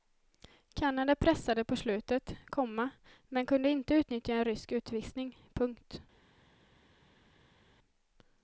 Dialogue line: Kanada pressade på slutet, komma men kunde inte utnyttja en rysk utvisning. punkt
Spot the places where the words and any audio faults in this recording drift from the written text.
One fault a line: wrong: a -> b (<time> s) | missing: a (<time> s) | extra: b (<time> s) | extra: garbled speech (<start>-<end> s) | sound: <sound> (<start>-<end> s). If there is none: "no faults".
no faults